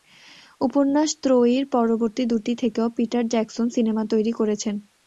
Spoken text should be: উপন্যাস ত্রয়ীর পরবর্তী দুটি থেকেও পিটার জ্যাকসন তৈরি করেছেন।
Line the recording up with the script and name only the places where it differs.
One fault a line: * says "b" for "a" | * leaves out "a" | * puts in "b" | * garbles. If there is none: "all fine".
* puts in "সিনেমা"